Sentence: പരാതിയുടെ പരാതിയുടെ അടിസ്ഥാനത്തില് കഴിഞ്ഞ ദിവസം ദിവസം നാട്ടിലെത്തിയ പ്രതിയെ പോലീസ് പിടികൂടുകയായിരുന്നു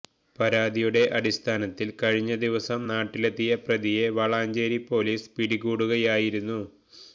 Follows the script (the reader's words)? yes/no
no